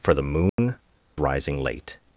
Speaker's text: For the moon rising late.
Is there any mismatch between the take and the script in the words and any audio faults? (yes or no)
yes